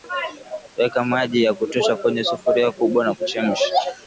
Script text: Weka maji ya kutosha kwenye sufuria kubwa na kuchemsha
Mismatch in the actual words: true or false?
false